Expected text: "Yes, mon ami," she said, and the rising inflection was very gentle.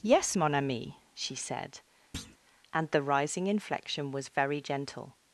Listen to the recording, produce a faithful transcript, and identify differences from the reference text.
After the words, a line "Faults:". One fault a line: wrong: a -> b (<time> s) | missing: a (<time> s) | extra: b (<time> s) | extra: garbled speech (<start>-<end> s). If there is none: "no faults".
"Yes, mon ami," she said, and the rising inflection was very gentle.
Faults:
no faults